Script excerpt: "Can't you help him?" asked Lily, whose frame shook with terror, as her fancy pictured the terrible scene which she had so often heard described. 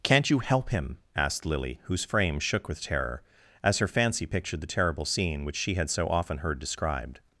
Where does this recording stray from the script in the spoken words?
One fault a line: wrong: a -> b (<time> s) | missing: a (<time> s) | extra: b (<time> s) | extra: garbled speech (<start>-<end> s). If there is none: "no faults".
no faults